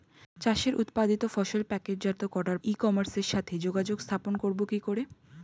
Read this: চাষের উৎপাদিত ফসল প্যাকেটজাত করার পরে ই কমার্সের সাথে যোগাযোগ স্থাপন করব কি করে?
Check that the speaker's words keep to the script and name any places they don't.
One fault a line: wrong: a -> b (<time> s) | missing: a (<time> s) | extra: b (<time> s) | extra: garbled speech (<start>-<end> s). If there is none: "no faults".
missing: পরে (2.6 s)